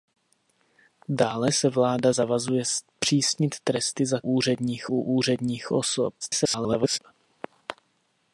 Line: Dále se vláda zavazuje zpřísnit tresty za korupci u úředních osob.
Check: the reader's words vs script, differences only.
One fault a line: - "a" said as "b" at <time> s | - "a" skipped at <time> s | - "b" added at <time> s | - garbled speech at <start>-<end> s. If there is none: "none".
- "korupci" said as "úředních" at 4.2 s
- garbled speech at 6.2-7.0 s